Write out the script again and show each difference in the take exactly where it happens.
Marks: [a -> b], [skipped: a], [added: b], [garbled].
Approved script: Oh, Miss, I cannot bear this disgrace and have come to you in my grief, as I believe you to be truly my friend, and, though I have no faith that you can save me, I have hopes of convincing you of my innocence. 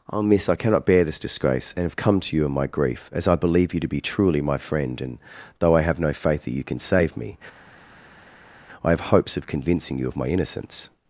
Oh, Miss, I cannot bear this disgrace and have come to you in my grief, as I believe you to be truly my friend, and, though I have no faith that you can save me, I have hopes of convincing you of my innocence.